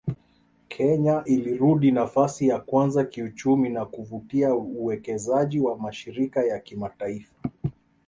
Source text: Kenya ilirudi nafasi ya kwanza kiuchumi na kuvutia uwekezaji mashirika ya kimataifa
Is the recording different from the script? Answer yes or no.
yes